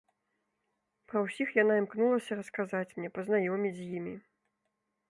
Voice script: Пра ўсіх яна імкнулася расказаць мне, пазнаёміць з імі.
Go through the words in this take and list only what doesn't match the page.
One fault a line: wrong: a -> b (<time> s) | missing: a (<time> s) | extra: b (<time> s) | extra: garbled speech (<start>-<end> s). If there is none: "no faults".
no faults